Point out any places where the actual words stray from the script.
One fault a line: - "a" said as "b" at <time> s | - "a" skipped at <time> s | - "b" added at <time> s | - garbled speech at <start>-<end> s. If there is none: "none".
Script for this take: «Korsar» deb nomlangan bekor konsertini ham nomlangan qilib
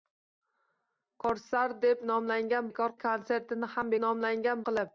none